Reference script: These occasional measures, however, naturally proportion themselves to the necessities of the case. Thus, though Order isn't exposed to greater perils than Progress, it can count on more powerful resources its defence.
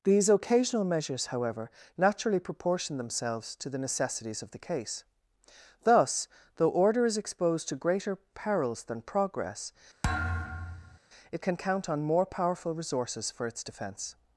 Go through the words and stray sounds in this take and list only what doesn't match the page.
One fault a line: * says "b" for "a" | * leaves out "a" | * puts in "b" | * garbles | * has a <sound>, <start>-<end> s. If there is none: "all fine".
* says "is" for "isn't"
* has a thud, 10.0-11.0 s
* puts in "for"